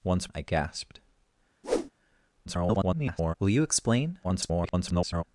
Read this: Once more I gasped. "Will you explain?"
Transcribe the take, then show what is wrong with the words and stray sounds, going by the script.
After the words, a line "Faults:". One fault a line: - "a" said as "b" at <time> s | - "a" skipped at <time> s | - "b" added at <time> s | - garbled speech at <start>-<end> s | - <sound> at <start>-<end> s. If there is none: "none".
Once I gasped. [garbled] "Will you explain?" [garbled]
Faults:
- "more" skipped at 0.3 s
- whoosh at 1.6-1.9 s
- garbled speech at 2.5-3.3 s
- garbled speech at 4.2-5.2 s